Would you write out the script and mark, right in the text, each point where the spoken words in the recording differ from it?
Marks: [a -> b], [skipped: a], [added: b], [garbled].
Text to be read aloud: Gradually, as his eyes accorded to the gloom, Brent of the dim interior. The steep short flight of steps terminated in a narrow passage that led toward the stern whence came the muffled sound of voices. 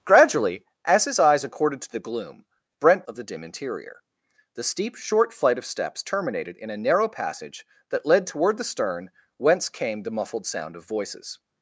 Gradually, as his eyes accorded to the gloom, Brent of the dim interior. The steep short flight of steps terminated in a narrow passage that led toward the stern whence came the muffled sound of voices.